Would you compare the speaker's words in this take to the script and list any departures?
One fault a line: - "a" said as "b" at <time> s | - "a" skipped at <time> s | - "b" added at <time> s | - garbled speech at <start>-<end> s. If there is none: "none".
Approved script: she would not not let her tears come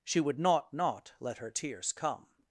none